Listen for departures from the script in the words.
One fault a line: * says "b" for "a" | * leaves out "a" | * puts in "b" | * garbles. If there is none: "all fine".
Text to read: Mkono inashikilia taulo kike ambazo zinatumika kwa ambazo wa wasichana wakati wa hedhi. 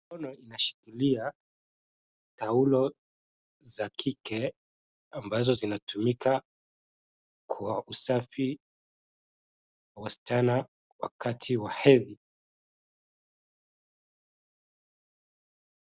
* puts in "za"
* says "usafi" for "ambazo"